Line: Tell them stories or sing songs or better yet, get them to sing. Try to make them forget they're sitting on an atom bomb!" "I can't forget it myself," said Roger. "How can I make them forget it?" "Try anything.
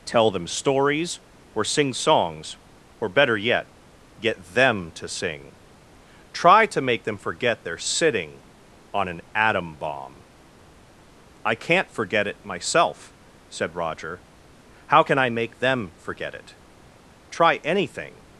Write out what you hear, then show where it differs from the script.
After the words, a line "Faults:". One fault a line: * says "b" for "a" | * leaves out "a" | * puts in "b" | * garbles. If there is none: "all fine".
Tell them stories or sing songs or better yet, get them to sing. Try to make them forget they're sitting on an atom bomb!" "I can't forget it myself," said Roger. "How can I make them forget it?" "Try anything.
Faults:
all fine